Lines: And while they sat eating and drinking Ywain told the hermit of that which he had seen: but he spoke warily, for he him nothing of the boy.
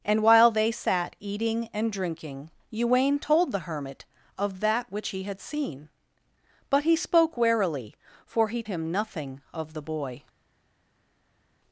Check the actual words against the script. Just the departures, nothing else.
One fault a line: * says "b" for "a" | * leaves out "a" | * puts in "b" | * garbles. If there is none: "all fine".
all fine